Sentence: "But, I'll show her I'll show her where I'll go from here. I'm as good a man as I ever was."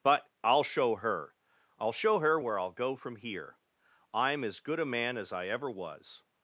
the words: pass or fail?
pass